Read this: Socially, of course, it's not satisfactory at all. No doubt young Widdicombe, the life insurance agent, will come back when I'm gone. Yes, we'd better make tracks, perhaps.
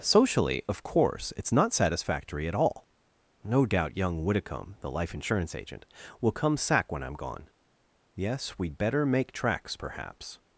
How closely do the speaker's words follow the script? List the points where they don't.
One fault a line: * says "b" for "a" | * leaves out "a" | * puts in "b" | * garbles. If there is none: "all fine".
* says "sack" for "back"